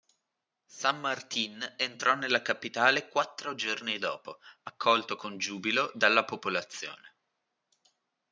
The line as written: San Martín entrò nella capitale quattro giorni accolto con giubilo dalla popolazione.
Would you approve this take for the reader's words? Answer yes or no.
no